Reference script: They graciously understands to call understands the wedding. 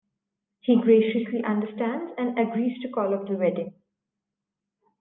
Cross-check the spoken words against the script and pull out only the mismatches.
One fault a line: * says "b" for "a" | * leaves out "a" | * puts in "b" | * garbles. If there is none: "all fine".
* says "He" for "They"
* puts in "and agrees"
* says "off" for "understands"